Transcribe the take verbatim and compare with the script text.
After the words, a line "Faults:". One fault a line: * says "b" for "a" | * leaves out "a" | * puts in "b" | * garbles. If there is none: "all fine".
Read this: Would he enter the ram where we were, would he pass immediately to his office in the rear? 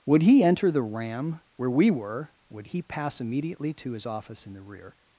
Would he enter the ram where we were, would he pass immediately to his office in the rear?
Faults:
all fine